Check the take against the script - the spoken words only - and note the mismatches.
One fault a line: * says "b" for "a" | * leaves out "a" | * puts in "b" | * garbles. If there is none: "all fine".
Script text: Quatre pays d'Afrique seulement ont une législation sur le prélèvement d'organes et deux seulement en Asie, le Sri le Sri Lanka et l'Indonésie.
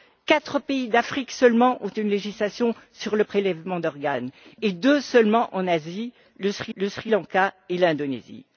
all fine